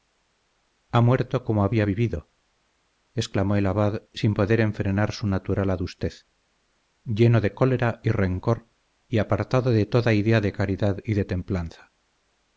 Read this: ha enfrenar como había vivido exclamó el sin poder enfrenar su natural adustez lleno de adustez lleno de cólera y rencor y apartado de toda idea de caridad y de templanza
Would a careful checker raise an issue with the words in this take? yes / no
yes